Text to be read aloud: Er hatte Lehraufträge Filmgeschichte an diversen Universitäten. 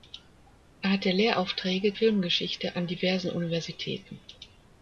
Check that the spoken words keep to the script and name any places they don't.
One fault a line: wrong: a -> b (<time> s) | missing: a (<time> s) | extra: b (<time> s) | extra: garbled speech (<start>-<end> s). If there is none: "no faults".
no faults